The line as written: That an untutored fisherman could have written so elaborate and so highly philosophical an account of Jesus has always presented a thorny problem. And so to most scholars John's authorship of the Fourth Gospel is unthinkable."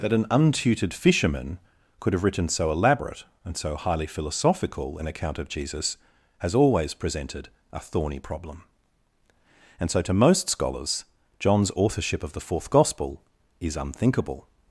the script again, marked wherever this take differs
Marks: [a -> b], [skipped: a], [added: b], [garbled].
That an untutored fisherman could have written so elaborate and so highly philosophical an account of Jesus has always presented a thorny problem. And so to most scholars John's authorship of the Fourth Gospel is unthinkable."